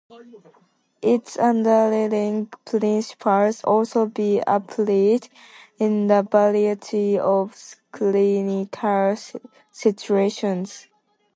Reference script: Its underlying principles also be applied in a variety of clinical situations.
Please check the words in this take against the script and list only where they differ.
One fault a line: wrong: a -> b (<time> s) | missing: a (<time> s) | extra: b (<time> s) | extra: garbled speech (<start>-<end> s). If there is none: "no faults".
no faults